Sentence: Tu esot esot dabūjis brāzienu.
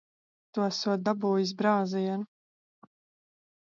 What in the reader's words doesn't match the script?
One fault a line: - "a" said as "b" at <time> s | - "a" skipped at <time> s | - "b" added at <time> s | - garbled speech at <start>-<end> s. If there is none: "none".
- "esot" skipped at 1.1 s